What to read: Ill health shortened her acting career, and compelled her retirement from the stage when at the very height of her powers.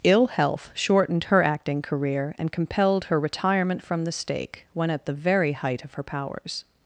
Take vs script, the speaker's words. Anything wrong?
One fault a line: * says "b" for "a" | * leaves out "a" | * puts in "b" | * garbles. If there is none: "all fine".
* says "stake" for "stage"